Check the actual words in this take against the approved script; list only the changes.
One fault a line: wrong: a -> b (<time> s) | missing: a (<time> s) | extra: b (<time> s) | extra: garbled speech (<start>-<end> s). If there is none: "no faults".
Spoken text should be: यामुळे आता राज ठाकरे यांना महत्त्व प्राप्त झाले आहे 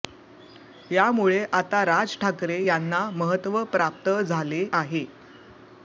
no faults